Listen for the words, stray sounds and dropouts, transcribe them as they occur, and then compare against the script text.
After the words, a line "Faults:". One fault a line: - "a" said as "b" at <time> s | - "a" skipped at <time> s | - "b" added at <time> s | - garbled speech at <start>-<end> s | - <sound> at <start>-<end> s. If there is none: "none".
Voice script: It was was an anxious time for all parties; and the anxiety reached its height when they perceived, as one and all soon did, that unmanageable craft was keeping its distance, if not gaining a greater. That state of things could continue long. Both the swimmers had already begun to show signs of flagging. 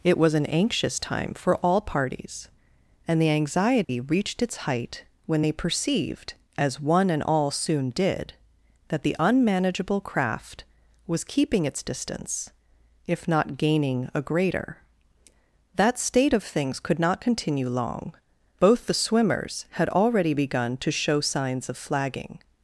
It was an anxious time for all parties; and the anxiety reached its height when they perceived, as one and all soon did, that the unmanageable craft was keeping its distance, if not gaining a greater. That state of things could not continue long. Both the swimmers had already begun to show signs of flagging.
Faults:
- "was" skipped at 0.3 s
- dropout at 3.8-3.9 s
- "the" added at 9.0 s
- "not" added at 17.0 s